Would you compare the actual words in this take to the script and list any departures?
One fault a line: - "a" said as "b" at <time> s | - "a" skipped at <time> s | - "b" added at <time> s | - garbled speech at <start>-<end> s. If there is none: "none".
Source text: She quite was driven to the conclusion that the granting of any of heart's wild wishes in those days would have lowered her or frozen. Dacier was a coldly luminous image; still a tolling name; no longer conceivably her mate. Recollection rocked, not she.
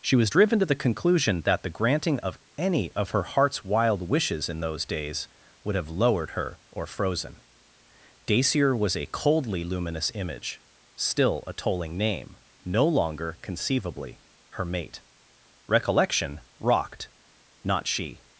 - "quite" skipped at 0.1 s
- "her" added at 3.1 s